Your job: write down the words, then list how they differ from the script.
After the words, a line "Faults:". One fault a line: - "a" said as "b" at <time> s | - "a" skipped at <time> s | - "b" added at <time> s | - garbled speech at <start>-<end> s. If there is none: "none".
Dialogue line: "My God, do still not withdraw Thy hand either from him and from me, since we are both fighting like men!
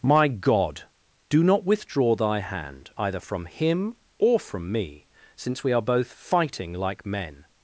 "My God, do not withdraw Thy hand either from him or from me, since we are both fighting like men!
Faults:
- "still" skipped at 1.4 s
- "and" said as "or" at 4.2 s